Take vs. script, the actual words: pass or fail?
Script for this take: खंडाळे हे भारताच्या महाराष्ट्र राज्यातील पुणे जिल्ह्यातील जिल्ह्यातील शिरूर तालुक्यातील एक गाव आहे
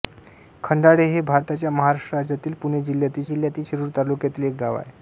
pass